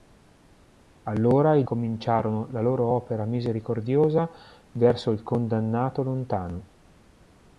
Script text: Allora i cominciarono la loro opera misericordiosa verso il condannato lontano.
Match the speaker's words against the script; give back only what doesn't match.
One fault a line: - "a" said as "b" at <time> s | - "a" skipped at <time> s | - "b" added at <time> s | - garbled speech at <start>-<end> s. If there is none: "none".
none